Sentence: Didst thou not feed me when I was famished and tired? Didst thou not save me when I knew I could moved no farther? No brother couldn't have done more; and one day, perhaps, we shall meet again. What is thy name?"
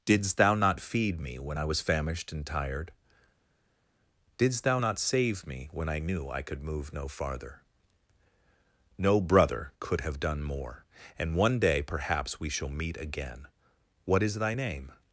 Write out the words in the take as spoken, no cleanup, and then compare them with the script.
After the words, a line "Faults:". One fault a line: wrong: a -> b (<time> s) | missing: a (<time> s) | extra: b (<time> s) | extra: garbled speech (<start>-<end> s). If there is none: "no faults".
Didst thou not feed me when I was famished and tired? Didst thou not save me when I knew I could move no farther? No brother could have done more; and one day, perhaps, we shall meet again. What is thy name?"
Faults:
wrong: moved -> move (6.6 s)
wrong: couldn't -> could (9.8 s)